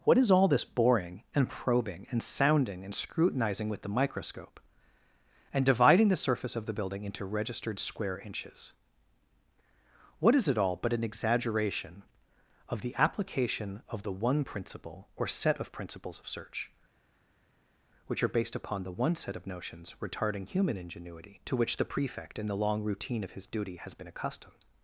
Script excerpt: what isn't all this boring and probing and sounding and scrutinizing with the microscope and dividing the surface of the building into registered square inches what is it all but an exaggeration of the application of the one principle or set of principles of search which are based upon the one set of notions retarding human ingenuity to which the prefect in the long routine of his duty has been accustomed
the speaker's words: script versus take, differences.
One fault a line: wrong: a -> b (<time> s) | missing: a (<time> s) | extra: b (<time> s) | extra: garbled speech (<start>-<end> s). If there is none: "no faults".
wrong: isn't -> is (0.2 s)